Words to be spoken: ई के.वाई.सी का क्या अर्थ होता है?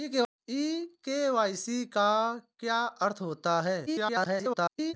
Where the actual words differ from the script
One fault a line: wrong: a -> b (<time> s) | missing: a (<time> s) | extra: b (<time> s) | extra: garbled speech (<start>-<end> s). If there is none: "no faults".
extra: garbled speech (3.9-4.9 s)